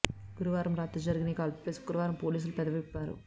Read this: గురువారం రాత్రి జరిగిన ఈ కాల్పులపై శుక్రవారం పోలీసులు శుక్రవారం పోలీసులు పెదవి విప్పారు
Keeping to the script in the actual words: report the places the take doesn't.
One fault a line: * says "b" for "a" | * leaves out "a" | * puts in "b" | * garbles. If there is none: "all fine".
* leaves out "శుక్రవారం పోలీసులు"